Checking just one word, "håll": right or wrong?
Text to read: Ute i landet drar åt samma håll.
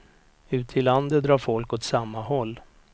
right